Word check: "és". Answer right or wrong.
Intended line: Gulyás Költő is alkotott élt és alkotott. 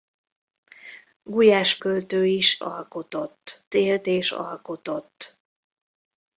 right